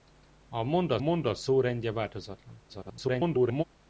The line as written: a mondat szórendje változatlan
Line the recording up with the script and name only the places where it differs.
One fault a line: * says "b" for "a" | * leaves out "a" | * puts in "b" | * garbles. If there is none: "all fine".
* puts in "mondat"
* garbles